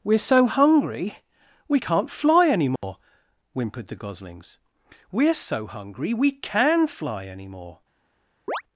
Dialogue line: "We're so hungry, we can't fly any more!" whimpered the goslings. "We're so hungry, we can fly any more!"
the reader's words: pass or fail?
pass